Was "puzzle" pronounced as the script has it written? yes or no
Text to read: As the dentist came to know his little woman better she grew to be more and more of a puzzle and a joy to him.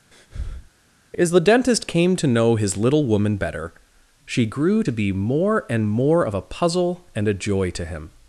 yes